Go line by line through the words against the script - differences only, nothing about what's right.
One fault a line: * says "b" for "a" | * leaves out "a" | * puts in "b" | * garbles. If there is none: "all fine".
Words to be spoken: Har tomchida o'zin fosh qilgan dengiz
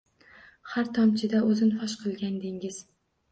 all fine